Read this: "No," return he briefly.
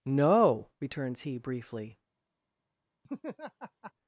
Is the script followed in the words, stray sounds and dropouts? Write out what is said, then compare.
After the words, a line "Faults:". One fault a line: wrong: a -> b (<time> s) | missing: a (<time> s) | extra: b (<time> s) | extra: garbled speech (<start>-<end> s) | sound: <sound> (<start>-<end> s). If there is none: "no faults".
"No," returns he briefly.
Faults:
wrong: return -> returns (0.8 s)
sound: laugh (3.0-3.9 s)